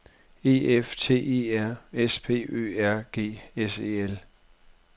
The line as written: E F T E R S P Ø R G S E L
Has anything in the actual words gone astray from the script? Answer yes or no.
no